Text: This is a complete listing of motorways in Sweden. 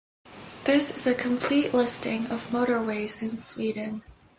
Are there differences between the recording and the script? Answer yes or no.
no